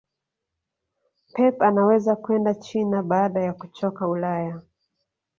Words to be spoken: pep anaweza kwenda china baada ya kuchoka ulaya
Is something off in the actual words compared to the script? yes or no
no